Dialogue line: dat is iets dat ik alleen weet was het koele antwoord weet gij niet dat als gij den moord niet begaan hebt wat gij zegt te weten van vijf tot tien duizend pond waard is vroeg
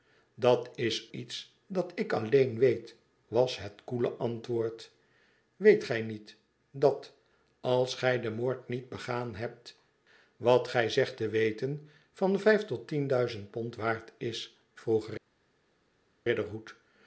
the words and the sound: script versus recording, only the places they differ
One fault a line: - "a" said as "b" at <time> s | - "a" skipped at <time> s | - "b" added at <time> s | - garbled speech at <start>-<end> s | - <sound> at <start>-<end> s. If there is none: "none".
none